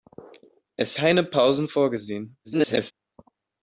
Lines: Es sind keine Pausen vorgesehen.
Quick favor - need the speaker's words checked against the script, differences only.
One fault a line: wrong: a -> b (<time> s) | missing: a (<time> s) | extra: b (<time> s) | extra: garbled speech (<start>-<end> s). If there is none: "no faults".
missing: sind (0.9 s)
extra: garbled speech (2.4-2.9 s)